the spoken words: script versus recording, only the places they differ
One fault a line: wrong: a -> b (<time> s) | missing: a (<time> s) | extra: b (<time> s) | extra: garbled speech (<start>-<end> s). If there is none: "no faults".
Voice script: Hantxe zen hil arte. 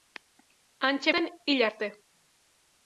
no faults